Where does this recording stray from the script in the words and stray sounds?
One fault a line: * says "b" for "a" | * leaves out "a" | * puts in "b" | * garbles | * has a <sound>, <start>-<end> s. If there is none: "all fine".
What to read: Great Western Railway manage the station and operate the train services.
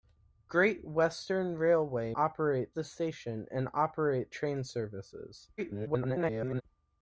* says "operate" for "manage"
* leaves out "the"
* garbles